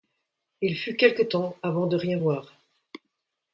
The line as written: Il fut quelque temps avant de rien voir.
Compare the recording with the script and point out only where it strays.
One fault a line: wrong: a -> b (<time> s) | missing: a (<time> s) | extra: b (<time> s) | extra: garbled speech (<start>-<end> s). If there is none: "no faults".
no faults